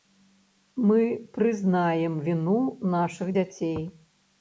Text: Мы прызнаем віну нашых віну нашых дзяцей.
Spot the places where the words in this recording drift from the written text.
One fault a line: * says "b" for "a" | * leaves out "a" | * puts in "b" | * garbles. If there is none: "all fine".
* leaves out "віну нашых"